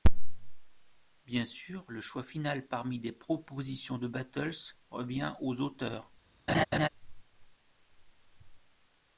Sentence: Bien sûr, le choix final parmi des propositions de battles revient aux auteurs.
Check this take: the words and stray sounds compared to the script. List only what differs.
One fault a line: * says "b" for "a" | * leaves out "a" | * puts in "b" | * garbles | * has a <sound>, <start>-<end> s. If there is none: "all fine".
* has a laugh, 6.5-6.9 s